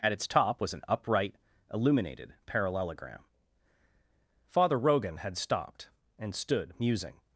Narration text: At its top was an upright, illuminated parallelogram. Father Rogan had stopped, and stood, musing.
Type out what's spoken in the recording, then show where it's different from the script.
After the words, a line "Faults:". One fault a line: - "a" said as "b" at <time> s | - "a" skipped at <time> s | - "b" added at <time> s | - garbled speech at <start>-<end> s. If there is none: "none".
At its top was an upright, illuminated parallelogram. Father Rogan had stopped, and stood, musing.
Faults:
none